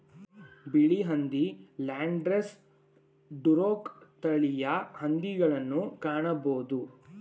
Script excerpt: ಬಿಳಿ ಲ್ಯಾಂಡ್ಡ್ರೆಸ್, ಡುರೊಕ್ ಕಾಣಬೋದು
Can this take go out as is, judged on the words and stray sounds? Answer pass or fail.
fail